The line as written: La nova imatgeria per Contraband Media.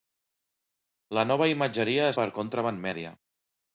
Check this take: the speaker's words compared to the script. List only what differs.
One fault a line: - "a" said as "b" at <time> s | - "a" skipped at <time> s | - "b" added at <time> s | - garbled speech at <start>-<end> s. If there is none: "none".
none